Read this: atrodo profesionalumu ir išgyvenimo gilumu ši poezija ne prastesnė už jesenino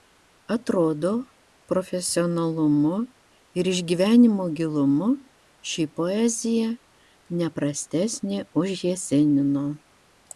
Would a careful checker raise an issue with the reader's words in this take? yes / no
no